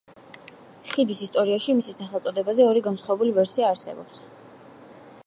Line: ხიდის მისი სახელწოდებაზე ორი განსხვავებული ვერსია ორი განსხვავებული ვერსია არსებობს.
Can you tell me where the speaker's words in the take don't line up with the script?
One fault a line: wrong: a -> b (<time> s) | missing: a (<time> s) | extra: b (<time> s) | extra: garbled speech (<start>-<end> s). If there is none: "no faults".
extra: ისტორიაში (1.2 s)
missing: ორი განსხვავებული ვერსია (3.7 s)